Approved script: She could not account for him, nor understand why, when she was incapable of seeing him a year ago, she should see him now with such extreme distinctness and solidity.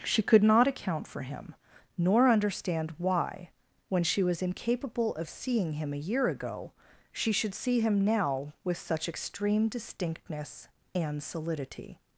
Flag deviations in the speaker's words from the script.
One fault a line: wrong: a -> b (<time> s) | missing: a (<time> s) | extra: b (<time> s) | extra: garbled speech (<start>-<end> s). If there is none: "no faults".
no faults